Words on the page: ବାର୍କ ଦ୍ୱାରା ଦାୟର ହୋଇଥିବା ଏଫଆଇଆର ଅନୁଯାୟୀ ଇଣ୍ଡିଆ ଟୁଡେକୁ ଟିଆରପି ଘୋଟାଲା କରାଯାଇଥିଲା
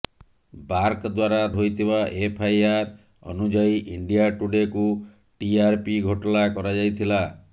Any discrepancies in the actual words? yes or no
yes